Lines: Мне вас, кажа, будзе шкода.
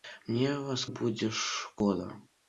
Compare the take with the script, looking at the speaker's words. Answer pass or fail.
fail